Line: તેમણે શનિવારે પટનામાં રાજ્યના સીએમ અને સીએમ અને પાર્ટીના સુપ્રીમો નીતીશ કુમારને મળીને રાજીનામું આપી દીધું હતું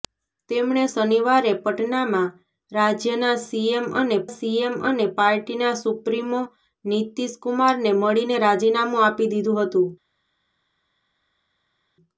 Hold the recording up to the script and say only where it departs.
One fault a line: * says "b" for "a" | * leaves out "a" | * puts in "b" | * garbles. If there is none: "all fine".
all fine